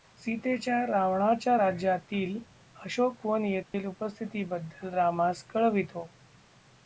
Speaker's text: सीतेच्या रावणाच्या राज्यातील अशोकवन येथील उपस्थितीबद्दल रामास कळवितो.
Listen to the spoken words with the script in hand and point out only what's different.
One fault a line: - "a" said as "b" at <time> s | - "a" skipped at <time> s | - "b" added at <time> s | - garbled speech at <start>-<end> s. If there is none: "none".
none